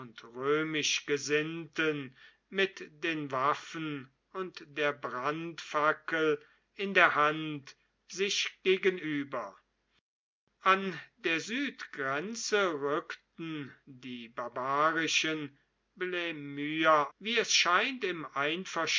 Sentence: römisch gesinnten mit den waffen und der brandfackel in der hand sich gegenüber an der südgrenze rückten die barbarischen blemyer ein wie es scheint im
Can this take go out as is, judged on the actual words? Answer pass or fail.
fail